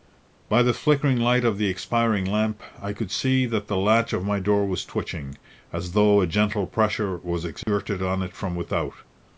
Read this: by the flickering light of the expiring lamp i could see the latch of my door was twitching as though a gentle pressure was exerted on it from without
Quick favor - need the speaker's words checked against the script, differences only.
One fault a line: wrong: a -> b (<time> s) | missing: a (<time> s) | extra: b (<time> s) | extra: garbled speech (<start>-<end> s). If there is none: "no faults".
extra: that (3.5 s)